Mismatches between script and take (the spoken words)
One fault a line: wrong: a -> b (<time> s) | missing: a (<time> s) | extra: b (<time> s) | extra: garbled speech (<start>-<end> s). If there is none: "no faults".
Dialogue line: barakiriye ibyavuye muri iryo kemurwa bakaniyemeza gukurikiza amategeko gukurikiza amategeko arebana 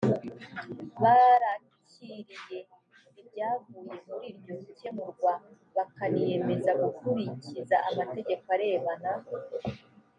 missing: gukurikiza amategeko (8.5 s)